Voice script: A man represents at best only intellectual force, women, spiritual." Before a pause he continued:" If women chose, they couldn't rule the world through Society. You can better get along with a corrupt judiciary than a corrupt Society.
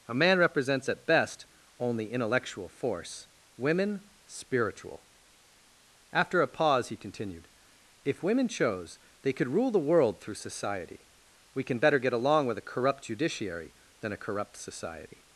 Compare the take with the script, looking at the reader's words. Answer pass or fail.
fail